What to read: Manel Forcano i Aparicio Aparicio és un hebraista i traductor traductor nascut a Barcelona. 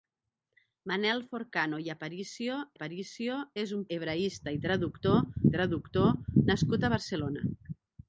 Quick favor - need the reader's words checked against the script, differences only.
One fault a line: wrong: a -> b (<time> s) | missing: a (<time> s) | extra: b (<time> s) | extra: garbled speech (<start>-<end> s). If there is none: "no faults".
no faults